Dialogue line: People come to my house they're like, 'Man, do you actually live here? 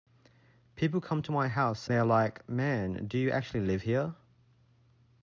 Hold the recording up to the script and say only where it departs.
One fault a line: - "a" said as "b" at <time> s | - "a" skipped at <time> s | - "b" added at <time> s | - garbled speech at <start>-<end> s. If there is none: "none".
none